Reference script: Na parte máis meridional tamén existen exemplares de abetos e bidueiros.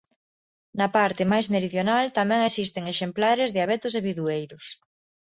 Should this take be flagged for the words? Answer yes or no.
no